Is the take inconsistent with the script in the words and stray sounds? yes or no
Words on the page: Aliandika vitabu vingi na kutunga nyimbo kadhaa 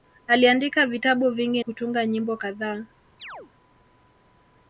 yes